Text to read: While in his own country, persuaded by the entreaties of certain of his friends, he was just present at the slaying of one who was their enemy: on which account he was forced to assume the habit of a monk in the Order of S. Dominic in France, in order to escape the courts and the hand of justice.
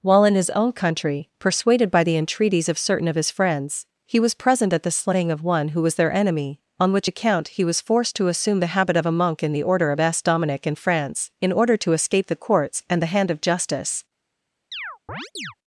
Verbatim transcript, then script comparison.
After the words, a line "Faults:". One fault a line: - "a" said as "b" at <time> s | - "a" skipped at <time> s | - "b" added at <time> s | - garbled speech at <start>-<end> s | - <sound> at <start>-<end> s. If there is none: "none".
While in his own country, persuaded by the entreaties of certain of his friends, he was present at the slaying of one who was their enemy: on which account he was forced to assume the habit of a monk in the Order of S. Dominic in France, in order to escape the courts and the hand of justice.
Faults:
- "just" skipped at 4.3 s
- chirp at 14.7-15.5 s